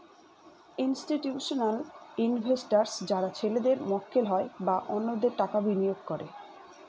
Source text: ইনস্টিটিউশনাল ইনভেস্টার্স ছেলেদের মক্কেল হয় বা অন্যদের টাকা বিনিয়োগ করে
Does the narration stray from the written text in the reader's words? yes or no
yes